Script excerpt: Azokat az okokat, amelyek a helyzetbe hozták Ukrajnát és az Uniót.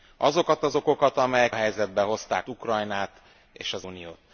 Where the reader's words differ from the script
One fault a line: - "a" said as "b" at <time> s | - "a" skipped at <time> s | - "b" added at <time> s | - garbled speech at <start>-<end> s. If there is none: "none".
none